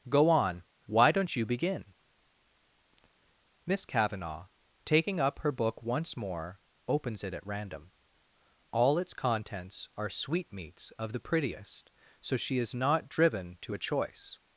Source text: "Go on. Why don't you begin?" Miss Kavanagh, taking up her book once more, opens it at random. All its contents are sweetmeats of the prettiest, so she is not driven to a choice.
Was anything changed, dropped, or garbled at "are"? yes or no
no